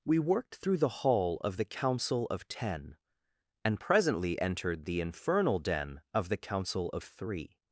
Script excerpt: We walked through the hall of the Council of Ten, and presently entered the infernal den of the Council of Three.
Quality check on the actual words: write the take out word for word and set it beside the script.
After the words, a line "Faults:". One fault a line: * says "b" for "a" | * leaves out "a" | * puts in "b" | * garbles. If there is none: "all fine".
We worked through the hall of the Council of Ten, and presently entered the infernal den of the Council of Three.
Faults:
* says "worked" for "walked"